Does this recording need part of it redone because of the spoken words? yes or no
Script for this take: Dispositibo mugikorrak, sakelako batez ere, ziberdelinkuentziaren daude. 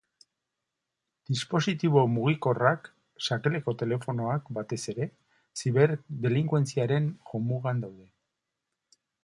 yes